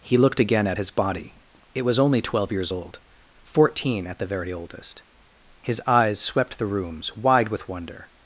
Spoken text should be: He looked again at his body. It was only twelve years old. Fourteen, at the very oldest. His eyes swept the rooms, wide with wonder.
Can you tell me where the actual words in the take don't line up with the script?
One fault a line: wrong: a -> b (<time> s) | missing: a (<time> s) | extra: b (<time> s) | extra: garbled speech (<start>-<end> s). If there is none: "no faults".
no faults